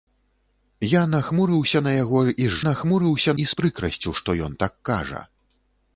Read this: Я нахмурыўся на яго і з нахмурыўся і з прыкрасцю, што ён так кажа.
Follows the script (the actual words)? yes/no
yes